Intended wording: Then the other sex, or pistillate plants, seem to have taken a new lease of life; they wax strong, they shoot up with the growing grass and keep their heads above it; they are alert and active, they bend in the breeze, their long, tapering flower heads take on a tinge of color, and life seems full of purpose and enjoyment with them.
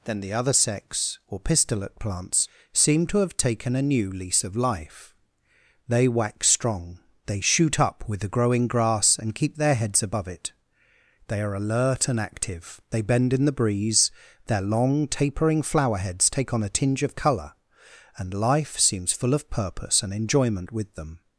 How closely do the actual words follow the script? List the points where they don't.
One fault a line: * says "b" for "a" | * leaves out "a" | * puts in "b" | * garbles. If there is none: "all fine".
all fine